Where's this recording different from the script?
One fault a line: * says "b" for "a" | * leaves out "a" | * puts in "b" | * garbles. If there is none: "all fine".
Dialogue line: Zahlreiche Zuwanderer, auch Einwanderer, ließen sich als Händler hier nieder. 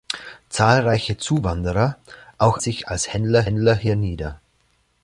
* leaves out "Einwanderer ließen"
* puts in "Händler"